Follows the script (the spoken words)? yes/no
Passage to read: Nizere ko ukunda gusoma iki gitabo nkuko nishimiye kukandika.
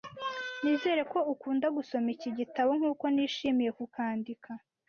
yes